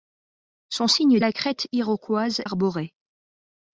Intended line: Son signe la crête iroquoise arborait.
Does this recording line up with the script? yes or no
yes